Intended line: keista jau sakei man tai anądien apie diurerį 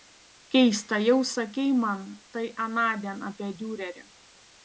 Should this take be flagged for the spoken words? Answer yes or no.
no